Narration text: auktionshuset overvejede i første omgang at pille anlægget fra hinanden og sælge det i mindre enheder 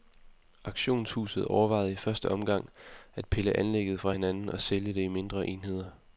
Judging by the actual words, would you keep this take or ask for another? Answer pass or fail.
pass